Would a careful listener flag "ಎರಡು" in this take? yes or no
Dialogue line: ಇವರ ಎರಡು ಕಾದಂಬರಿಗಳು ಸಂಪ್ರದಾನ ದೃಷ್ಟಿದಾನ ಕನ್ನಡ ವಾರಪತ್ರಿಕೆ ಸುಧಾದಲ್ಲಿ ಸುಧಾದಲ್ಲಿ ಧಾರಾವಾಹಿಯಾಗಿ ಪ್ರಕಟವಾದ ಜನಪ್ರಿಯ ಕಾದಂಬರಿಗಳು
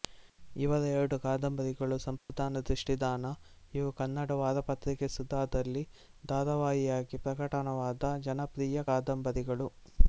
no